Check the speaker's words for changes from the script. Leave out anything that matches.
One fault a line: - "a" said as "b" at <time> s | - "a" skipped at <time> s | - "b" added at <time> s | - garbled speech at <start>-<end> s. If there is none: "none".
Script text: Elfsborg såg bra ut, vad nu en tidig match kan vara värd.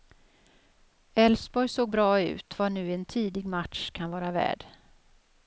none